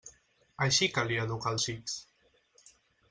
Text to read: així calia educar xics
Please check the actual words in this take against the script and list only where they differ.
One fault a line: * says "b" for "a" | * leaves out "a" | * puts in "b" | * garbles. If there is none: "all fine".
* puts in "els"